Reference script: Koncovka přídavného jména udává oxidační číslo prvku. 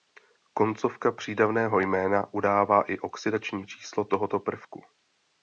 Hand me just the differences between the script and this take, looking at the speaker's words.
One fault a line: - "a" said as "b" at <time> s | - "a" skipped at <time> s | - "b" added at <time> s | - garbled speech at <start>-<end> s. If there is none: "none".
- "i" added at 2.8 s
- "tohoto" added at 4.0 s